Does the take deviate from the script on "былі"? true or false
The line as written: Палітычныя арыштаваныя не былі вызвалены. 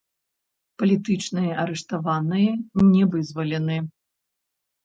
true